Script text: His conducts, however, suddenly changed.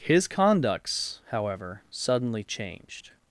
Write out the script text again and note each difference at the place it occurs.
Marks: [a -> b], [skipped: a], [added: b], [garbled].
His conducts, however, suddenly changed.